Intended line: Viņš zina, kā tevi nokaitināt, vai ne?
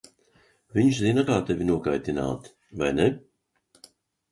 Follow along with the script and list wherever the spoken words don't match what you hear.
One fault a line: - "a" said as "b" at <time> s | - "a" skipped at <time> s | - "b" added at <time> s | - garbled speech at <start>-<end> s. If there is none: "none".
none